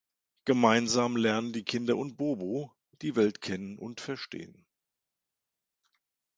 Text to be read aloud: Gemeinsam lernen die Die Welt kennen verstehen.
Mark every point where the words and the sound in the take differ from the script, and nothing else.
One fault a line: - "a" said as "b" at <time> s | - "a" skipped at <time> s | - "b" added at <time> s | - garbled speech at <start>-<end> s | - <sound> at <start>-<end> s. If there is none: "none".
- "Kinder und Bobo" added at 1.6 s
- "und" added at 3.8 s